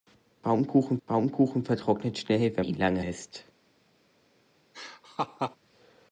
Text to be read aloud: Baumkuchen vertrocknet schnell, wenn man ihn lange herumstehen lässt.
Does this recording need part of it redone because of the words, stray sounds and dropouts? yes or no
yes